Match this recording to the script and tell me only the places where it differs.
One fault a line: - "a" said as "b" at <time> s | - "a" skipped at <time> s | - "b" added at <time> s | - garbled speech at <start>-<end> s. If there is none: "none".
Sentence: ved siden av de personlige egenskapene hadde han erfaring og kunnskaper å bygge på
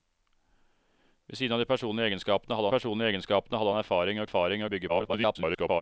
- "personlige egenskapene hadde" added at 2.7 s
- "kunnskaper" said as "erfaring" at 4.3 s
- garbled speech at 4.9-5.8 s